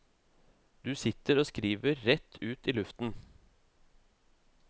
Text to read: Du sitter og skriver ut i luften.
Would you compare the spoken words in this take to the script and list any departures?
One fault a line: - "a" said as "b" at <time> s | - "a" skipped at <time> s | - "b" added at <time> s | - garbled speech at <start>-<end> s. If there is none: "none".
- "rett" added at 2.1 s